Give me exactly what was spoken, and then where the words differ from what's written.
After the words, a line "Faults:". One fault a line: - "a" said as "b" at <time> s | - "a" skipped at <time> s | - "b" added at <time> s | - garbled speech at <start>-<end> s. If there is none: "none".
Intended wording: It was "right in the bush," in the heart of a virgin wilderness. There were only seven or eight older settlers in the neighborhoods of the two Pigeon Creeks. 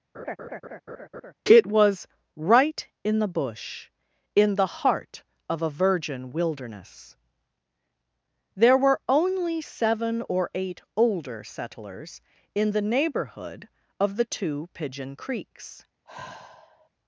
It was "right in the bush," in the heart of a virgin wilderness. There were only seven or eight older settlers in the neighborhood of the two Pigeon Creeks.
Faults:
- "neighborhoods" said as "neighborhood" at 12.8 s